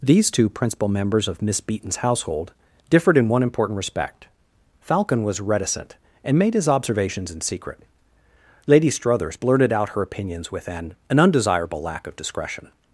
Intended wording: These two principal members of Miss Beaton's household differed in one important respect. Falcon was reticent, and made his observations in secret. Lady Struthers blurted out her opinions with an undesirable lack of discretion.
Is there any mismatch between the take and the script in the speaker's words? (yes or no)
yes